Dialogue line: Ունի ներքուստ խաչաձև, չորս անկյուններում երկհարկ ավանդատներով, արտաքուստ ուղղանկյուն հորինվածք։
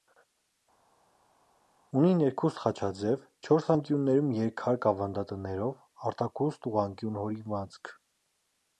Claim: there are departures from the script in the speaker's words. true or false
false